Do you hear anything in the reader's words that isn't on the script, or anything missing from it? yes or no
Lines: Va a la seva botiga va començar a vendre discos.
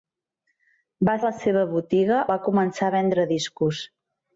no